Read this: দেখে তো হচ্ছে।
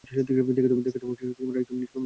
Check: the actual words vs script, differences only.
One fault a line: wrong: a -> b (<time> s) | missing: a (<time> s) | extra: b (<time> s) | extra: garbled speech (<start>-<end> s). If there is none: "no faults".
extra: একদম নিষ্পাপ মনে (0.3 s)